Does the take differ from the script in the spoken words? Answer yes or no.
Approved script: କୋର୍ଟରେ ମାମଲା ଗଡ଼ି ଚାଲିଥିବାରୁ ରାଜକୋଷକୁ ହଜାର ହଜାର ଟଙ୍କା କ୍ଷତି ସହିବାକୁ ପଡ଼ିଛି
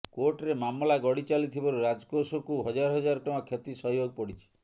no